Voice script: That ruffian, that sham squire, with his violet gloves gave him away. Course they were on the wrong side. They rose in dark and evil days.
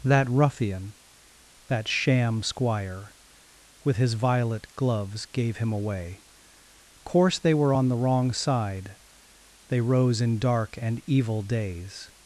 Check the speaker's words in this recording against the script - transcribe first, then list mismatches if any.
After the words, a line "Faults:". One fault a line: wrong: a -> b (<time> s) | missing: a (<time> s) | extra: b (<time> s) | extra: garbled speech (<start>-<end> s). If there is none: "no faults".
That ruffian, that sham squire, with his violet gloves gave him away. Course they were on the wrong side. They rose in dark and evil days.
Faults:
no faults